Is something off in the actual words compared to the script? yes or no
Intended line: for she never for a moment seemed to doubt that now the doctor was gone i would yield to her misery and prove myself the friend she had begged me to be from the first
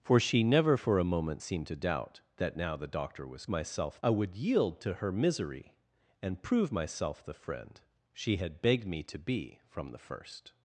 yes